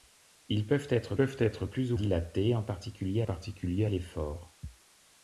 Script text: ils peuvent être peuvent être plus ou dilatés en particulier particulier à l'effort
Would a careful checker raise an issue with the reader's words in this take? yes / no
no